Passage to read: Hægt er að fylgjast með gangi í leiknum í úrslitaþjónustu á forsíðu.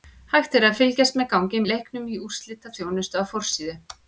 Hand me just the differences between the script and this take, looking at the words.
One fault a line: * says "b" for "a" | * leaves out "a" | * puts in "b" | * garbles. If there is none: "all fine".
all fine